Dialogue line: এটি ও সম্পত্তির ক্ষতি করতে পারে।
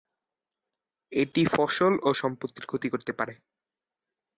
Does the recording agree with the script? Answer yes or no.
no